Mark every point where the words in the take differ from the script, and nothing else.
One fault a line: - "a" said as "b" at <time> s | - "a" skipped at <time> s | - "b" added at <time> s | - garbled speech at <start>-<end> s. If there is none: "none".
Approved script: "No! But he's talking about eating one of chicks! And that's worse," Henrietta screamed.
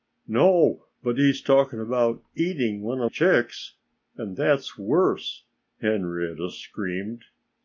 none